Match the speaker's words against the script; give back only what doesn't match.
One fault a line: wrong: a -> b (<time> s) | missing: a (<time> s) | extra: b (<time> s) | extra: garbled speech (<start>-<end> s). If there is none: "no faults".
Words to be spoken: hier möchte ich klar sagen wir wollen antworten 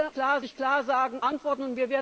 wrong: möchte -> klar (0.1 s)
missing: wir wollen (1.2 s)